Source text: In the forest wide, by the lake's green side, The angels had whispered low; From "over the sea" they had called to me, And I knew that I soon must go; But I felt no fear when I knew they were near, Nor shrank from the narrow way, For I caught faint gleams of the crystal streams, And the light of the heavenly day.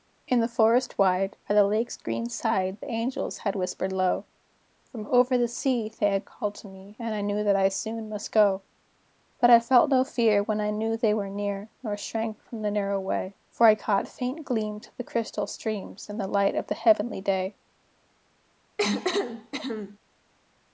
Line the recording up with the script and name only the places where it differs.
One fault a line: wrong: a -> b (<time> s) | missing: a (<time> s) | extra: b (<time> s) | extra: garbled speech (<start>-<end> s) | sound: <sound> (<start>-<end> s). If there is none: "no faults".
sound: cough (18.8-20.0 s)